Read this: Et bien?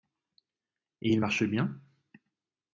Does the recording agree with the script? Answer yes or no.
no